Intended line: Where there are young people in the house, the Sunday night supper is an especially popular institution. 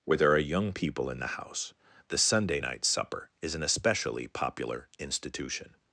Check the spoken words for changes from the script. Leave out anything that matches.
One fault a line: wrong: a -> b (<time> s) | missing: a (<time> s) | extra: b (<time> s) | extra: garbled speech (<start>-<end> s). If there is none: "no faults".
no faults